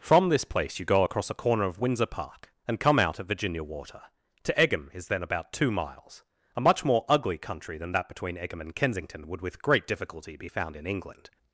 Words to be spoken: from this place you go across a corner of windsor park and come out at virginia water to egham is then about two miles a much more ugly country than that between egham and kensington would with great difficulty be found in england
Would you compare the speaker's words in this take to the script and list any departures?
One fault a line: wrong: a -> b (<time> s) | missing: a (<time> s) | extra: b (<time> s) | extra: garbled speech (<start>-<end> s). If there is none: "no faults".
no faults